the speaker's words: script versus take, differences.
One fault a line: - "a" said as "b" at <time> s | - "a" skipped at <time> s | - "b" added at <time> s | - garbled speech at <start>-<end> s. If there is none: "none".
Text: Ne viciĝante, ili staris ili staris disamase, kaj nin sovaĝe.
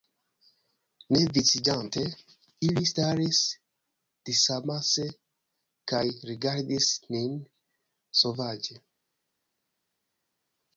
- "ili staris" skipped at 3.4 s
- "rigardis" added at 6.3 s